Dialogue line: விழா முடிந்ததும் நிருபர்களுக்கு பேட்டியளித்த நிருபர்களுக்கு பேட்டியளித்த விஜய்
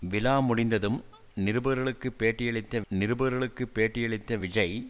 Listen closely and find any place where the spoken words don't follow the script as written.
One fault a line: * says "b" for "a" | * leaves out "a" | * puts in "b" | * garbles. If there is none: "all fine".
all fine